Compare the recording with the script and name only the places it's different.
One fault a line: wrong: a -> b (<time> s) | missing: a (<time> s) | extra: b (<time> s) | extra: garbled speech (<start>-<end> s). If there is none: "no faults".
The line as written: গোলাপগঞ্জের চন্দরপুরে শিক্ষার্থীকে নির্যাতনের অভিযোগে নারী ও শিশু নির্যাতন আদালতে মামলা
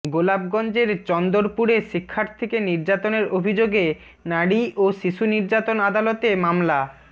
no faults